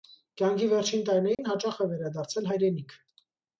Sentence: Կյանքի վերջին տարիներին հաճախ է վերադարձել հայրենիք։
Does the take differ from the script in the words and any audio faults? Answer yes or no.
yes